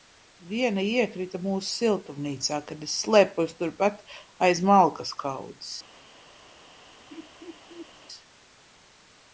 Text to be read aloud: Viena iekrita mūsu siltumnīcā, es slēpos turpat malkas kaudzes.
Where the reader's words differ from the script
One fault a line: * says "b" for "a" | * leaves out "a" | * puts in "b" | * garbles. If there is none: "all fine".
* puts in "kad"
* puts in "aiz"